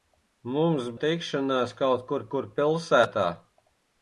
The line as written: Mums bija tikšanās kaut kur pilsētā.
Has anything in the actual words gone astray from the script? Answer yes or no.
yes